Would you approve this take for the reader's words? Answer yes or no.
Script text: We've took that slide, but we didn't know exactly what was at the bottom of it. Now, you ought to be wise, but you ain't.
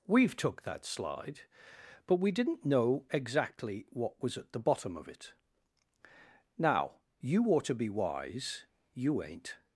no